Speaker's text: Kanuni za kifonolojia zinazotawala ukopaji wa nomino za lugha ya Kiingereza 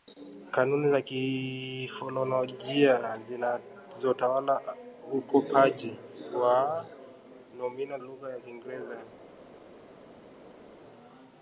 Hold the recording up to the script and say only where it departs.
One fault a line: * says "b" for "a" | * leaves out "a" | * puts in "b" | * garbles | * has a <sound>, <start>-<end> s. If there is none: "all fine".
* leaves out "za"